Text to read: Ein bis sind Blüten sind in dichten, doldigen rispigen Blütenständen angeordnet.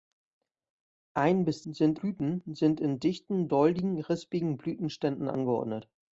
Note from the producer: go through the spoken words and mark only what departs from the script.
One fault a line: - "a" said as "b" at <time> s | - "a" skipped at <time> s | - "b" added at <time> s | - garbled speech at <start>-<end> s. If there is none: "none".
none